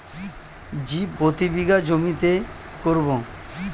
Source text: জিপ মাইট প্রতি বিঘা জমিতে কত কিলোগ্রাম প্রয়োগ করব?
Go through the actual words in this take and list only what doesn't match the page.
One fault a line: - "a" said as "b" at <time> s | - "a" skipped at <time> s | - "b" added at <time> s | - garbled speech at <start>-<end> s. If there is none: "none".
- "মাইট" skipped at 1.1 s
- "কত কিলোগ্রাম প্রয়োগ" skipped at 2.3 s